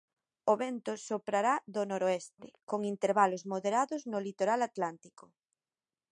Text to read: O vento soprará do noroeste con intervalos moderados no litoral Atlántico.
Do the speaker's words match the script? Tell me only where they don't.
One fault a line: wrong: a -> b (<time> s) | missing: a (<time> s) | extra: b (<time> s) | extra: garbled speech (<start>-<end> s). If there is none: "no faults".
no faults